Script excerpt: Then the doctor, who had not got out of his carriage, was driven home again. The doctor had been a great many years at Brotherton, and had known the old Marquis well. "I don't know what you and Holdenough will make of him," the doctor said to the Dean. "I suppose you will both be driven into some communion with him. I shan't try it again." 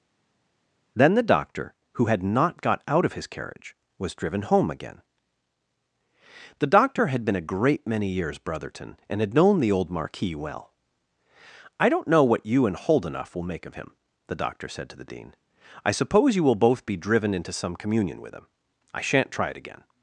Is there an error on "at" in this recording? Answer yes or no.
yes